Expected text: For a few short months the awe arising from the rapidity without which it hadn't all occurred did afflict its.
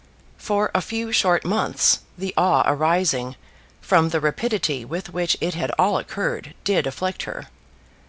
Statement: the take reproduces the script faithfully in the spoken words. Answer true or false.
false